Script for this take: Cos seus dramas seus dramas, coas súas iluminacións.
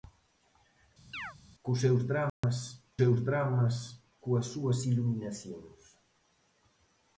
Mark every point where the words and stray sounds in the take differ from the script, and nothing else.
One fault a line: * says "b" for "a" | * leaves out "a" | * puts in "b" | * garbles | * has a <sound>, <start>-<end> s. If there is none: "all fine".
* has a chirp, 1.1-1.4 s
* has a dropout, 2.3-2.4 s